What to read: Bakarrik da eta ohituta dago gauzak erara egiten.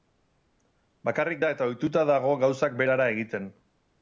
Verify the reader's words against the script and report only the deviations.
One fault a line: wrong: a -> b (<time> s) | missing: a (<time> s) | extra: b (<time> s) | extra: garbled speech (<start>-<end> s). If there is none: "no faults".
no faults